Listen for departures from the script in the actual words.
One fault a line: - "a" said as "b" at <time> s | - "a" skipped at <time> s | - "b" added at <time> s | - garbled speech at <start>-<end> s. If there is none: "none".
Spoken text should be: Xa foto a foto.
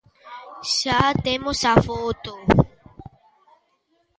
- "foto" said as "temos" at 1.2 s